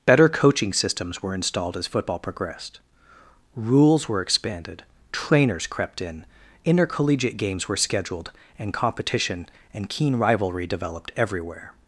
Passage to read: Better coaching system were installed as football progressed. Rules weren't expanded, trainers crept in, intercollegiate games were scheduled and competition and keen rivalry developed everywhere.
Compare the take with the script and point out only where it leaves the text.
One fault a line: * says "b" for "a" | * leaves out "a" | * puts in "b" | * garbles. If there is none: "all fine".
* says "systems" for "system"
* says "were" for "weren't"